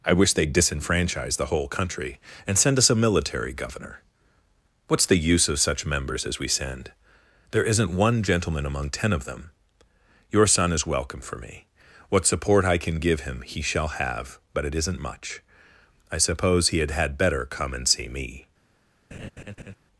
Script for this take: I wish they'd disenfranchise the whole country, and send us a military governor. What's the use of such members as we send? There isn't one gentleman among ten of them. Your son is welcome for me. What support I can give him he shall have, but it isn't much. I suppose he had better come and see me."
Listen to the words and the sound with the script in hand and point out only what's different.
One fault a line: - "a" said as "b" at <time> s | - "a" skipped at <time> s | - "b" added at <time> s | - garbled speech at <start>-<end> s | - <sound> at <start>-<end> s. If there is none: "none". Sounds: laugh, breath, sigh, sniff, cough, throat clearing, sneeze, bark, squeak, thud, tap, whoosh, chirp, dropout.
- "had" added at 16.9 s
- laugh at 19.1-19.7 s